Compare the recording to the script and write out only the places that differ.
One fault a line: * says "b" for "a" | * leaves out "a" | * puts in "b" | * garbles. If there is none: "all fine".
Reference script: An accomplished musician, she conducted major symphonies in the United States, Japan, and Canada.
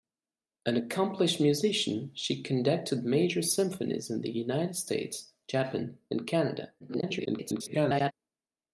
* garbles